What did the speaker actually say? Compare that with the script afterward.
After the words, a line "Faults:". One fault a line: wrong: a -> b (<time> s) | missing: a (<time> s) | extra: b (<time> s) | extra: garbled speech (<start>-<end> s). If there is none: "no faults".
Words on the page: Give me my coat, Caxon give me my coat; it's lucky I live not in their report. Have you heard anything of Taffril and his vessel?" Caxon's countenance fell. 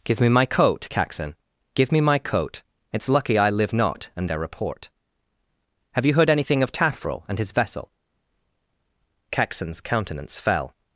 Give me my coat, Caxon give me my coat; it's lucky I live not and their report. Have you heard anything of Taffril and his vessel?" Caxon's countenance fell.
Faults:
wrong: in -> and (4.2 s)